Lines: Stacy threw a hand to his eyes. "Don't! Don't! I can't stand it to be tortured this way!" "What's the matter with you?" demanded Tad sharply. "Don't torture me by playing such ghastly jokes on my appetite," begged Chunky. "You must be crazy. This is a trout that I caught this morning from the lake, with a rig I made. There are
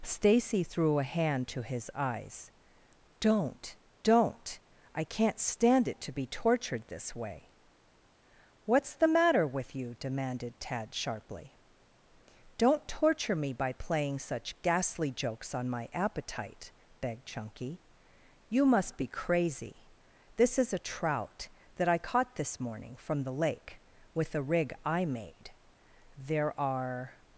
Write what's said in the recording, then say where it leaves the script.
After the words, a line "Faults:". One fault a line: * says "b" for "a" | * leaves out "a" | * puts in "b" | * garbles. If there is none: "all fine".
Stacy threw a hand to his eyes. "Don't! Don't! I can't stand it to be tortured this way!" "What's the matter with you?" demanded Tad sharply. "Don't torture me by playing such ghastly jokes on my appetite," begged Chunky. "You must be crazy. This is a trout that I caught this morning from the lake, with a rig I made. There are
Faults:
all fine